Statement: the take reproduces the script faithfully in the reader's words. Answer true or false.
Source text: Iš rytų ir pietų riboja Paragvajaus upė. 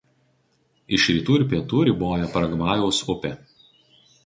true